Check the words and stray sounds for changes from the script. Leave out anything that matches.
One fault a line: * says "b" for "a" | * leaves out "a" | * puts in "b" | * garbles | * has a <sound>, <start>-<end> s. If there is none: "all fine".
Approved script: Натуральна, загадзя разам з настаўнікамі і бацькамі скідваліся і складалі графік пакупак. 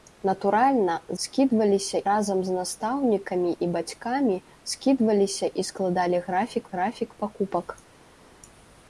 * says "скідваліся" for "загадзя"
* puts in "графік"